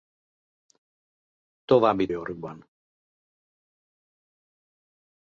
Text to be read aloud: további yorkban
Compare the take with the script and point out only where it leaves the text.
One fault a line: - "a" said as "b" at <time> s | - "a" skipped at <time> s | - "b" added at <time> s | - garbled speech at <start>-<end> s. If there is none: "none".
none